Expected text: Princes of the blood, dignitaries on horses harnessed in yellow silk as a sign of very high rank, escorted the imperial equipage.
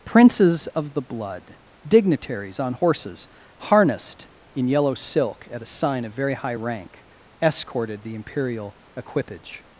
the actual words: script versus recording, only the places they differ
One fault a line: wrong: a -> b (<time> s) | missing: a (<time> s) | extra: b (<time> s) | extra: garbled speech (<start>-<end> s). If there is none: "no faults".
wrong: as -> at (5.5 s)